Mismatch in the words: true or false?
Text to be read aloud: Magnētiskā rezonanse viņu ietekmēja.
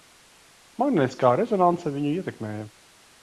false